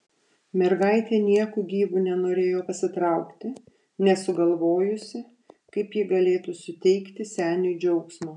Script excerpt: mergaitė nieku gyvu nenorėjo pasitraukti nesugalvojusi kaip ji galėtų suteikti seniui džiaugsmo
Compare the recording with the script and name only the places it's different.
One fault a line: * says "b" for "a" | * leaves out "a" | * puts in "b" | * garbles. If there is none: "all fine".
all fine